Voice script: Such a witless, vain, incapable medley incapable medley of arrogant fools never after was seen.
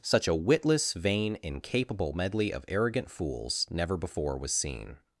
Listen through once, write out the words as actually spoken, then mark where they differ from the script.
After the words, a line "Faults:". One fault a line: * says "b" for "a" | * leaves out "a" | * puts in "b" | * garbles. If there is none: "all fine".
Such a witless, vain, incapable medley of arrogant fools never before was seen.
Faults:
* leaves out "incapable medley"
* says "before" for "after"